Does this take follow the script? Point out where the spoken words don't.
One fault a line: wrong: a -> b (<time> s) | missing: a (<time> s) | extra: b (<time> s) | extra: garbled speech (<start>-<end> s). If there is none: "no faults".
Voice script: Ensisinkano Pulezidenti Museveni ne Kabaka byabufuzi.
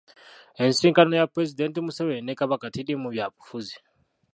extra: ya (1.2 s)
extra: teriimu (2.8 s)